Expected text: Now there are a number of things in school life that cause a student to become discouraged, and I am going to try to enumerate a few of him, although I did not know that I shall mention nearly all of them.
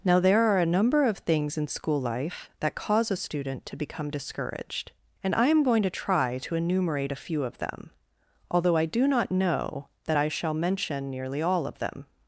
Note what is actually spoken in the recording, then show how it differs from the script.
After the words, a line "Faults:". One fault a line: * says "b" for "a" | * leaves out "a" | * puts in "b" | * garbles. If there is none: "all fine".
Now there are a number of things in school life that cause a student to become discouraged, and I am going to try to enumerate a few of them, although I do not know that I shall mention nearly all of them.
Faults:
* says "them" for "him"
* says "do" for "did"